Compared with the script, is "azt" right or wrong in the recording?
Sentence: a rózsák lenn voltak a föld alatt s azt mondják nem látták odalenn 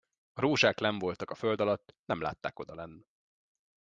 wrong